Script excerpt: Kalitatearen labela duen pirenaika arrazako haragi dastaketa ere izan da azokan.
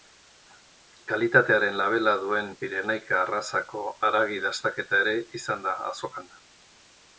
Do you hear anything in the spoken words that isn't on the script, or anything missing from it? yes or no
no